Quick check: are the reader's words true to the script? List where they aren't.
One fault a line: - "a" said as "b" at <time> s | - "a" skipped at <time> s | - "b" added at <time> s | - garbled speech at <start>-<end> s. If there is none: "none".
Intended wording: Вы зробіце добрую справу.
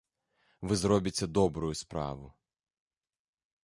none